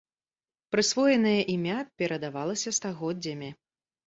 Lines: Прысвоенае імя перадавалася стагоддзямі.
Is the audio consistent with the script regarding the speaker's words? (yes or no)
yes